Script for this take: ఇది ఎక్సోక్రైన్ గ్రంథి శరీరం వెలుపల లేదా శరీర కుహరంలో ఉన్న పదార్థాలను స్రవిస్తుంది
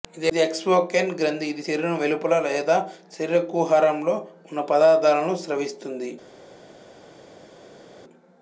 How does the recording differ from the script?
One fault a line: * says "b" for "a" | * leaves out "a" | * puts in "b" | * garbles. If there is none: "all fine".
* puts in "ఇది"